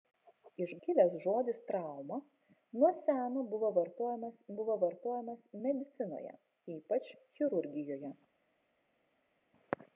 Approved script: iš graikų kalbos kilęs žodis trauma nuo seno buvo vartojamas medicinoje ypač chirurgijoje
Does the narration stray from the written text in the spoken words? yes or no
yes